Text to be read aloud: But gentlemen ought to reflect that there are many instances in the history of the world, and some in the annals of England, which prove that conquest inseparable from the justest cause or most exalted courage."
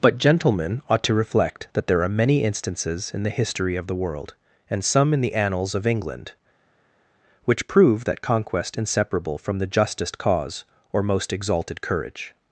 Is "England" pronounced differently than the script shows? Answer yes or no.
no